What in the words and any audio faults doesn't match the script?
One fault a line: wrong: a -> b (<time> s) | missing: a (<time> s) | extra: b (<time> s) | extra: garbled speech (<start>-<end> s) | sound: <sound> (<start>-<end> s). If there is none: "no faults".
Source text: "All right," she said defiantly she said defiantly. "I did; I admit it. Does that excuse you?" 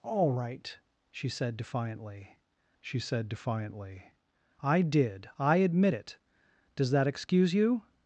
no faults